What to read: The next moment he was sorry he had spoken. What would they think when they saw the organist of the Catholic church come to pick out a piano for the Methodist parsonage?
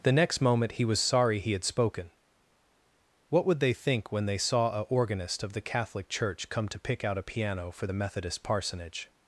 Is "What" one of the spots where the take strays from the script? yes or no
no